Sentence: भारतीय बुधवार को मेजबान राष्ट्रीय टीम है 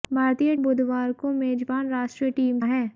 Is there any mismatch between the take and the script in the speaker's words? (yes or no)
no